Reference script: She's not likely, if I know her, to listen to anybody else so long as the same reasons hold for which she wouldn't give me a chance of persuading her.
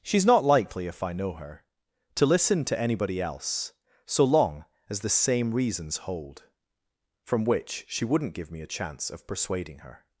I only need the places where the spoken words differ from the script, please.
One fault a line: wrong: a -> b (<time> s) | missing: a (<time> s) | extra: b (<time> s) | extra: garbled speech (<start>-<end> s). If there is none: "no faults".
wrong: for -> from (7.2 s)